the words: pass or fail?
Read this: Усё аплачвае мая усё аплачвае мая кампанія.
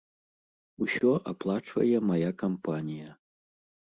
fail